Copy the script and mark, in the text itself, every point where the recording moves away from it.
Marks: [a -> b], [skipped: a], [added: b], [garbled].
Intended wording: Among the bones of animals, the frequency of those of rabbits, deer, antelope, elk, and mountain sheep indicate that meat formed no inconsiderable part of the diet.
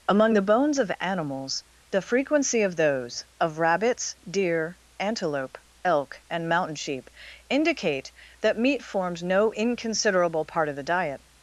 Among the bones of animals, the frequency of those of rabbits, deer, antelope, elk, and mountain sheep indicate that meat [formed -> forms] no inconsiderable part of the diet.